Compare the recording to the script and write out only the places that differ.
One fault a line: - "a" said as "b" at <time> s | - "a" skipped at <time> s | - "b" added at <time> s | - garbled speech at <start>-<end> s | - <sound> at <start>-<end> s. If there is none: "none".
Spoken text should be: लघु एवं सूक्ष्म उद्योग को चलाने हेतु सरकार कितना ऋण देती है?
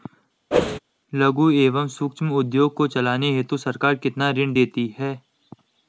- whoosh at 0.5-0.8 s